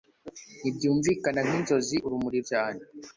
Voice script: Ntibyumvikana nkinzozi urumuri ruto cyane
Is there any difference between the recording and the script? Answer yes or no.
yes